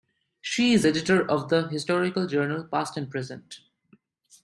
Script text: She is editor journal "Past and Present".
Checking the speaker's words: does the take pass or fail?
fail